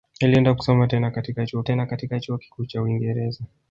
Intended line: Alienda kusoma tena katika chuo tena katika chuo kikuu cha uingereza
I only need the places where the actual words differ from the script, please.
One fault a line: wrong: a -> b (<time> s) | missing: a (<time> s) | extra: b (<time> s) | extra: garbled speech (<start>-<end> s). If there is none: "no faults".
no faults